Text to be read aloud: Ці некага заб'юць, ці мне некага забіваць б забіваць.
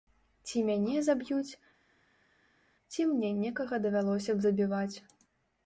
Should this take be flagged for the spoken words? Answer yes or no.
yes